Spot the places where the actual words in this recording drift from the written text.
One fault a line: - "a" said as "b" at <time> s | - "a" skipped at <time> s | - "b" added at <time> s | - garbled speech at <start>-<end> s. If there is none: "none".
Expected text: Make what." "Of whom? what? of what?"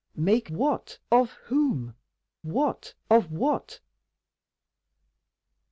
none